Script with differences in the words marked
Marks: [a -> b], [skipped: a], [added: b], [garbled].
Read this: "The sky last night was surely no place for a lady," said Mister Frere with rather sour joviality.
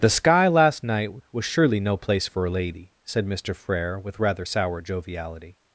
"The sky last night was surely no place for a lady," said Mister Frere with rather sour joviality.